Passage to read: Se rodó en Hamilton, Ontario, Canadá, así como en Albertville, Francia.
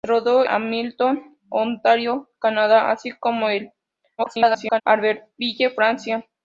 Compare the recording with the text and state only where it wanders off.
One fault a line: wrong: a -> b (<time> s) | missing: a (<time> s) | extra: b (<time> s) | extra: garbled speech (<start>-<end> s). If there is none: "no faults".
missing: en (0.4 s)
extra: garbled speech (4.2-4.8 s)